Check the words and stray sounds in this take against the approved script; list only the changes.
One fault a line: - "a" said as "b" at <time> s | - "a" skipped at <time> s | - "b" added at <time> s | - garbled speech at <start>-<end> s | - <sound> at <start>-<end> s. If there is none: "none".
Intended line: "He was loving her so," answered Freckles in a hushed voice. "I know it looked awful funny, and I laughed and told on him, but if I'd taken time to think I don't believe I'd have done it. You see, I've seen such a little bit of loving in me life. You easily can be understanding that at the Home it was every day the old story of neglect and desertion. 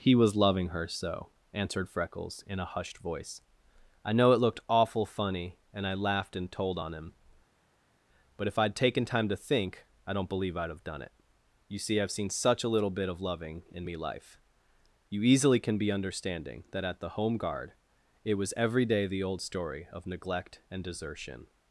- "guard" added at 17.4 s